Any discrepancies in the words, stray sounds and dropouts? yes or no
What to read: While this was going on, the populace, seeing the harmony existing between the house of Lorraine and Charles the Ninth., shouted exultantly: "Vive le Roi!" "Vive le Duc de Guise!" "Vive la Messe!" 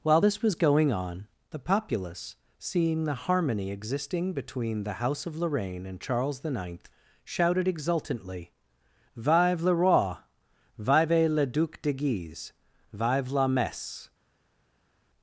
no